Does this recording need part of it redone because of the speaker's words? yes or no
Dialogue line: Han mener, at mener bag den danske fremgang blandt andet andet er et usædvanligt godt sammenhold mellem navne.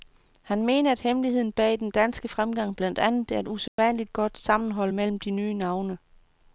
yes